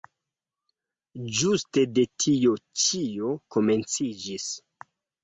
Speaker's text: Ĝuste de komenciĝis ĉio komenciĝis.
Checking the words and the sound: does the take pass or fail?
fail